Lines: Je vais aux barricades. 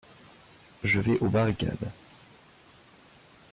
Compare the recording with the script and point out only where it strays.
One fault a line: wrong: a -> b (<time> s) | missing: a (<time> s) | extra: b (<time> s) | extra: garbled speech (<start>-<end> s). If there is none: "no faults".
no faults